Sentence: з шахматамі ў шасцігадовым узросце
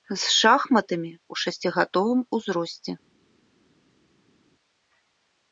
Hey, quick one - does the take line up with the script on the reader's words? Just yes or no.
yes